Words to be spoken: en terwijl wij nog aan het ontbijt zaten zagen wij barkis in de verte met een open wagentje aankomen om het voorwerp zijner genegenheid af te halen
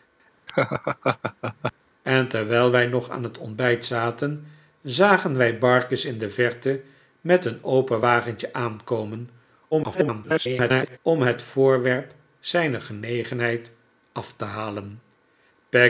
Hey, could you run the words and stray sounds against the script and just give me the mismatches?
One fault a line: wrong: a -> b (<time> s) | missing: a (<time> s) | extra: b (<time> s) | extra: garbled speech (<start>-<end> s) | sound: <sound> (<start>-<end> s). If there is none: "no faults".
sound: laugh (0.5-1.7 s)
extra: garbled speech (9.7-11.0 s)